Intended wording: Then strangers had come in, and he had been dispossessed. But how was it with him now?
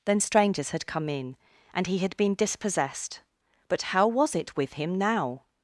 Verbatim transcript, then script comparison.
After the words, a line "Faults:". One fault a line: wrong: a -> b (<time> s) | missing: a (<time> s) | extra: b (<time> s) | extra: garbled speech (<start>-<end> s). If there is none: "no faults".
Then strangers had come in, and he had been dispossessed. But how was it with him now?
Faults:
no faults